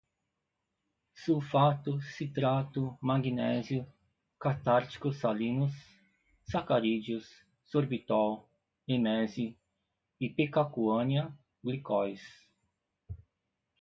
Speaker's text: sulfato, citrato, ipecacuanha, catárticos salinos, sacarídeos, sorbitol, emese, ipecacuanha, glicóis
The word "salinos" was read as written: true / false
true